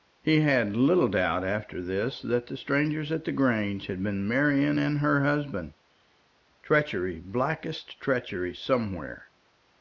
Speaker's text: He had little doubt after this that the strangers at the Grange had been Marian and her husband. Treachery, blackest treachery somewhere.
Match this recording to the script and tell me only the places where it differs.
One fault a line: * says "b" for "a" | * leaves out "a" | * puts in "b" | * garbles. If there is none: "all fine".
all fine